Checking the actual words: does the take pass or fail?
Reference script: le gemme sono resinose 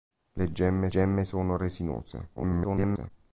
fail